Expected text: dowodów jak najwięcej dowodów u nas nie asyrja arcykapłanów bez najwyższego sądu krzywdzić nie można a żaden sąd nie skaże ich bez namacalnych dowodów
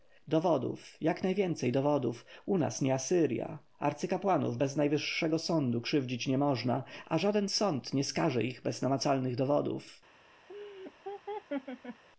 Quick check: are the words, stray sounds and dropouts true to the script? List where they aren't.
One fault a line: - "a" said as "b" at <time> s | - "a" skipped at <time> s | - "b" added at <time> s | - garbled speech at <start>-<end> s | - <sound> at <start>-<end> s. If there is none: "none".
- laugh at 10.5-12.0 s